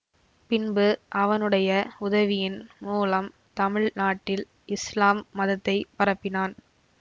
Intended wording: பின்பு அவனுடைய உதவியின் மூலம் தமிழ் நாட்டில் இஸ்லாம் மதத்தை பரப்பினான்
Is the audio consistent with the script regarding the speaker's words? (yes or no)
yes